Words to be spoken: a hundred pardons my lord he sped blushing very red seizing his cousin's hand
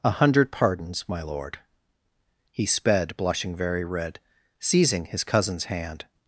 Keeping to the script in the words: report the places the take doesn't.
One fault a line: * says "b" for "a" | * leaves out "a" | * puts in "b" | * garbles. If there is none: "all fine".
all fine